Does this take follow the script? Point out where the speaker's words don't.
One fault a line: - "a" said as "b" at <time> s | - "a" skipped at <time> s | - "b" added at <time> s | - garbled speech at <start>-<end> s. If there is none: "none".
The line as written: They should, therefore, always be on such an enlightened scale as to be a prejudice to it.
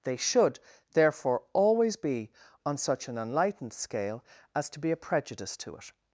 none